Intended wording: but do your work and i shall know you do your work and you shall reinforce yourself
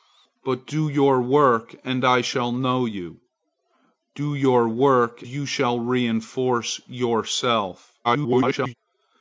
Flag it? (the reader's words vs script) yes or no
yes